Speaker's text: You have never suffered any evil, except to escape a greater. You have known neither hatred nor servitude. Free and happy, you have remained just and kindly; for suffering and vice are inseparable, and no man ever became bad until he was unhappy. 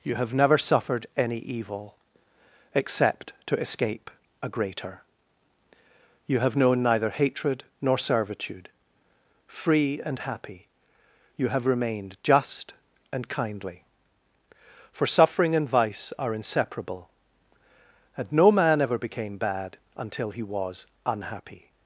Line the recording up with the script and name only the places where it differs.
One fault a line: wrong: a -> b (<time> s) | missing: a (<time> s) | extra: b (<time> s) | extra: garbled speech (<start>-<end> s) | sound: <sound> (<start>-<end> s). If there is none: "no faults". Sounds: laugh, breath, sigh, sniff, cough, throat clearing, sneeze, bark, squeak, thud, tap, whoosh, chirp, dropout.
no faults